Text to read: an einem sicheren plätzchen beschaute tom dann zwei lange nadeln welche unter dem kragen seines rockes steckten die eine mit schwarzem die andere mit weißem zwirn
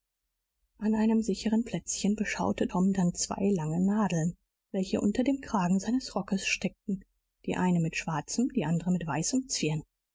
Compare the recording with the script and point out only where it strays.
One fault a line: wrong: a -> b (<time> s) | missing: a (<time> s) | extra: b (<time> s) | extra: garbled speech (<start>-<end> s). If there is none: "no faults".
no faults